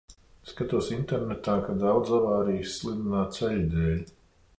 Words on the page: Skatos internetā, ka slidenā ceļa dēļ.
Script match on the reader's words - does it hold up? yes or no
no